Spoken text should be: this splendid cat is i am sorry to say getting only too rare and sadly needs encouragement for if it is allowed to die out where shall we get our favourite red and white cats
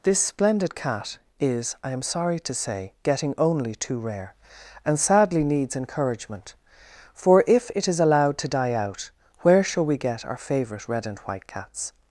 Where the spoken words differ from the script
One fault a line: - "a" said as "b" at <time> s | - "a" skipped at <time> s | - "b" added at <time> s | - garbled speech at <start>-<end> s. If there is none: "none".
none